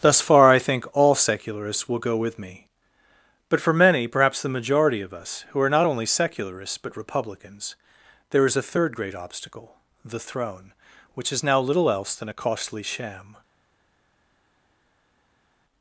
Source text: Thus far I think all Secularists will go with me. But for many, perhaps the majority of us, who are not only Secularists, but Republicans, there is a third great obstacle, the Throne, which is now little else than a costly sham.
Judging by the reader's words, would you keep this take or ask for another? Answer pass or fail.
pass